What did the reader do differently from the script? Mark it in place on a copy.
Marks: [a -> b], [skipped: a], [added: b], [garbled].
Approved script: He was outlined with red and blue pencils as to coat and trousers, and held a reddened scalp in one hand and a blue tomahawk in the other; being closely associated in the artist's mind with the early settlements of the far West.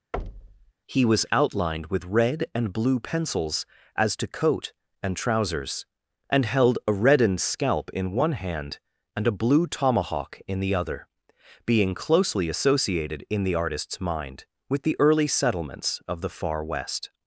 He was outlined with red and blue pencils as to coat and trousers, and held a reddened scalp in one hand and a blue tomahawk in the other; being closely associated in the artist's mind with the early settlements of the far West.